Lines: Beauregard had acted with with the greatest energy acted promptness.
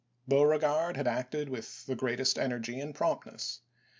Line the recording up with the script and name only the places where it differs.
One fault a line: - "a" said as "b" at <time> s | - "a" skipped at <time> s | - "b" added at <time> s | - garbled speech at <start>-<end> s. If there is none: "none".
- "with" skipped at 1.9 s
- "acted" said as "and" at 2.8 s